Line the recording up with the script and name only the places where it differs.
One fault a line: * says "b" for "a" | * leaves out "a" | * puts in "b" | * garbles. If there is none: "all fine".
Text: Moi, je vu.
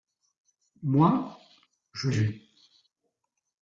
all fine